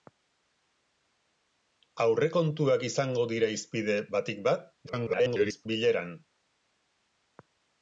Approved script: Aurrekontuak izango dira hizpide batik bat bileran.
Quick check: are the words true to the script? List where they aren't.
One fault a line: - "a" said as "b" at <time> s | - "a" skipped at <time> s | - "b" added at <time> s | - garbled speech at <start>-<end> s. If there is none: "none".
- garbled speech at 4.9-5.7 s